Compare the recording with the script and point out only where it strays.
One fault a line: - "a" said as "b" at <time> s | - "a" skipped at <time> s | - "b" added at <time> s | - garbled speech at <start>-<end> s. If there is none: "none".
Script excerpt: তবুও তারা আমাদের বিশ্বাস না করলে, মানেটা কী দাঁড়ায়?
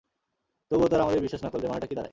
none